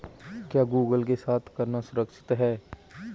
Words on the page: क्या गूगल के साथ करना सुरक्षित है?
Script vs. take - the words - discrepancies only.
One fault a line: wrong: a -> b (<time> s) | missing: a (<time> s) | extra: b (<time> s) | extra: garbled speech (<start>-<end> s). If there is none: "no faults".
no faults